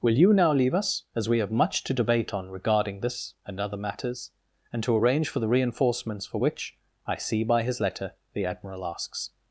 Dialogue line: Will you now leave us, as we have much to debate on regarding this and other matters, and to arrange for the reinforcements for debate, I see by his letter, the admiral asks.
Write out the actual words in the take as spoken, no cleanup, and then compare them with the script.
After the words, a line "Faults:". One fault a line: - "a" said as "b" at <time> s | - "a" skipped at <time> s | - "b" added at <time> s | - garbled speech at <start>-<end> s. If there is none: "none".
Will you now leave us, as we have much to debate on regarding this and other matters, and to arrange for the reinforcements for which, I see by his letter, the admiral asks.
Faults:
- "debate" said as "which" at 6.4 s